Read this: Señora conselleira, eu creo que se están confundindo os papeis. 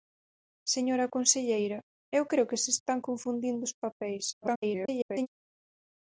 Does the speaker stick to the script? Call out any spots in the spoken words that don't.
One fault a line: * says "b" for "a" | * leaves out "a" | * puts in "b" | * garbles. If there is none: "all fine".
* garbles